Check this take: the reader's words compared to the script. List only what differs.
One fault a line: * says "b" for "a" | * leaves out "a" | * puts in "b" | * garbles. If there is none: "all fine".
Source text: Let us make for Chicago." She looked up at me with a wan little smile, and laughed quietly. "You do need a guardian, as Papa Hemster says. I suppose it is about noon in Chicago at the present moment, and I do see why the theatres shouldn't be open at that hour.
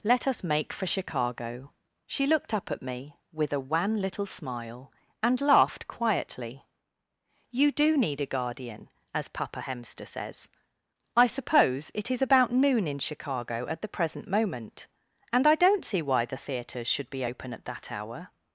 * says "don't" for "do"
* says "should" for "shouldn't"